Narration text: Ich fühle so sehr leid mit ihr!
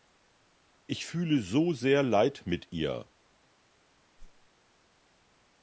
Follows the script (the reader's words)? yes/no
yes